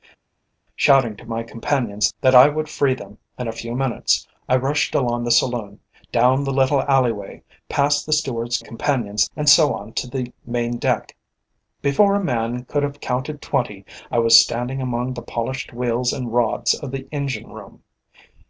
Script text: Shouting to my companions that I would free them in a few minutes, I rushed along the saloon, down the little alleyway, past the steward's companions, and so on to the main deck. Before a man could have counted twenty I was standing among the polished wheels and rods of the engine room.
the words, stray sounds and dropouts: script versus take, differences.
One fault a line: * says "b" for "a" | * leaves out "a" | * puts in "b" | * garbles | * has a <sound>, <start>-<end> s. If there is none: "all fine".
all fine